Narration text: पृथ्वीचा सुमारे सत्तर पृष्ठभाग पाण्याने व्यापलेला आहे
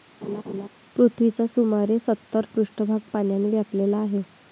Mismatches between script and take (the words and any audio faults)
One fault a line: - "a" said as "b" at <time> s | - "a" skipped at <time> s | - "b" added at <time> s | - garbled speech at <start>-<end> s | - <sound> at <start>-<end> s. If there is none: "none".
- laugh at 0.2-0.7 s